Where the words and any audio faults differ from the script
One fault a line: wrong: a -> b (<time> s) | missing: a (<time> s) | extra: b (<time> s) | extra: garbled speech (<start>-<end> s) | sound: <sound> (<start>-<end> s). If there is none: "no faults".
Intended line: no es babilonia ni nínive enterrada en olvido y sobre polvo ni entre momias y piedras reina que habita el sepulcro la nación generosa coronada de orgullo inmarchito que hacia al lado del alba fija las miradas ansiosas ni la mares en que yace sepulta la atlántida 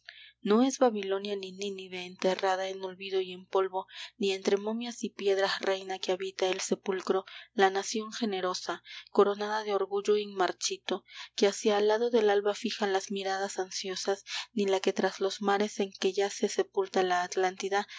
wrong: sobre -> en (3.3 s)
extra: que tras los (14.8 s)